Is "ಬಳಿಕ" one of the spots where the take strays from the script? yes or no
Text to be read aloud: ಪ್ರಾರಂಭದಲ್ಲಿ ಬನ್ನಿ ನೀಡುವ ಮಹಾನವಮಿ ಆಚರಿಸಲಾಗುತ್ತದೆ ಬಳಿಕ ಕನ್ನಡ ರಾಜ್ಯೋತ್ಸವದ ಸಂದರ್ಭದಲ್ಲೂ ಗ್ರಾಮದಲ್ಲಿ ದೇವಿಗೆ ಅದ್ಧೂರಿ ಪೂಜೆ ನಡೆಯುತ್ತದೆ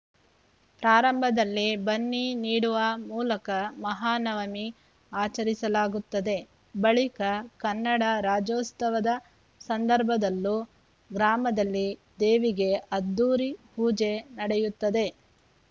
no